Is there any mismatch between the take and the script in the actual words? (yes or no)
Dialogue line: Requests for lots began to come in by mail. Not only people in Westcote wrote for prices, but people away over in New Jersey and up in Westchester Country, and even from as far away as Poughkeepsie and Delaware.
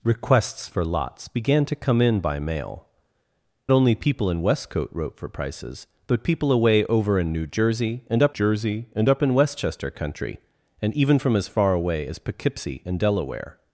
yes